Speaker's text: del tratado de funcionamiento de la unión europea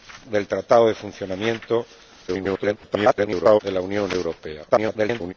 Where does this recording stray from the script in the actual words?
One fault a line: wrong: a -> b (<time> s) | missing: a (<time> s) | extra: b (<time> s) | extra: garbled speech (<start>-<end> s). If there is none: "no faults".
extra: garbled speech (2.3-3.6 s)
extra: garbled speech (4.7-5.3 s)